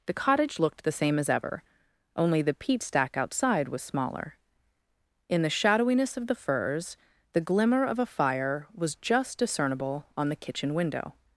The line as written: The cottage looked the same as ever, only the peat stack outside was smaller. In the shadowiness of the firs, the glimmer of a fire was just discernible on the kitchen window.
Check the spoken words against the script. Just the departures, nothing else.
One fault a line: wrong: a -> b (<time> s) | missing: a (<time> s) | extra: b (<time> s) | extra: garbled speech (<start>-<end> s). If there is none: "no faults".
no faults